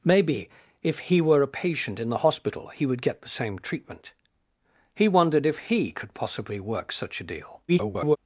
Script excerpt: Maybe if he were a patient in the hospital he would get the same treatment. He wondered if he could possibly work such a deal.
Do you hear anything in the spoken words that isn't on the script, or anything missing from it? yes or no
yes